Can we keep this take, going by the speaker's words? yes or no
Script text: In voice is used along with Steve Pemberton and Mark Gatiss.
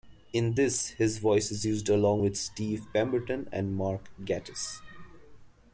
no